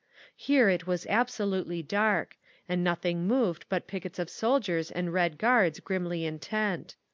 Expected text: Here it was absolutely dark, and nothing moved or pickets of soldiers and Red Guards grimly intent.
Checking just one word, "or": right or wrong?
wrong